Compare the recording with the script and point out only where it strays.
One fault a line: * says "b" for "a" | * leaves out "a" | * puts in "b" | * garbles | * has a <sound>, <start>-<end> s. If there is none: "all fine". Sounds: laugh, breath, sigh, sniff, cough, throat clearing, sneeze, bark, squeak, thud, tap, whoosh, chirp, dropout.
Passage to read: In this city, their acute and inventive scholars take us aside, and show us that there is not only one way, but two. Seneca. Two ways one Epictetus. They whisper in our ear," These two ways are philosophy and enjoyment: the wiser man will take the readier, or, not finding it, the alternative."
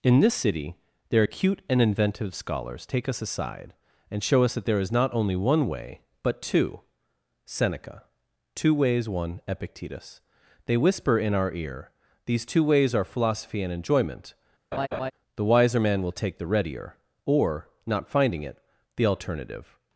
* has a laugh, 14.7-15.1 s